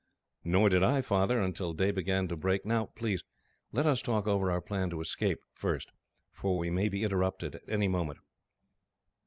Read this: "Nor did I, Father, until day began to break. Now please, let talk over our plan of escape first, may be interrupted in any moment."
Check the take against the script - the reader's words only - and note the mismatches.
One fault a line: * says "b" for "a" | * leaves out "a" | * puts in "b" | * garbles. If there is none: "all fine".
* puts in "us"
* puts in "for we"
* says "at" for "in"